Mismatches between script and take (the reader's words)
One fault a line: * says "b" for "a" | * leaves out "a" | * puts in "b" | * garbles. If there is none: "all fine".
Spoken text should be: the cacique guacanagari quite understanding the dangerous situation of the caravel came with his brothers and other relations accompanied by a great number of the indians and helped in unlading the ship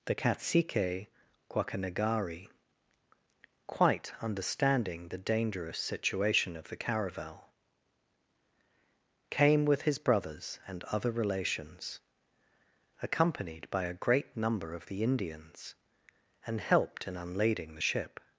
all fine